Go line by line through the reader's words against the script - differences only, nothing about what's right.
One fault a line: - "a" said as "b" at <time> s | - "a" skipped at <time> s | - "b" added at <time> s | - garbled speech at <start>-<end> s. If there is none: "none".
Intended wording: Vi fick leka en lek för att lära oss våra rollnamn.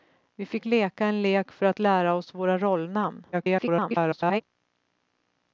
- garbled speech at 3.3-4.4 s